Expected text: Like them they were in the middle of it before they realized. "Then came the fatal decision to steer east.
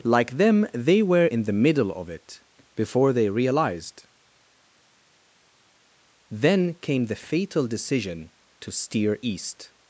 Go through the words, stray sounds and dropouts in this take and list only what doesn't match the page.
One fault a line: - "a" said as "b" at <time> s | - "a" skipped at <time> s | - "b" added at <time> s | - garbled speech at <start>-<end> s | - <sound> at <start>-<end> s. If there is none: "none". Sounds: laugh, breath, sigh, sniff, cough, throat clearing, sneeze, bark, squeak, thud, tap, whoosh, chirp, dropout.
none